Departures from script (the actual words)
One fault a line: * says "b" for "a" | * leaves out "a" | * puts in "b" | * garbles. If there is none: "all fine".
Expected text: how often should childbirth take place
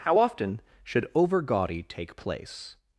* says "overgaudy" for "childbirth"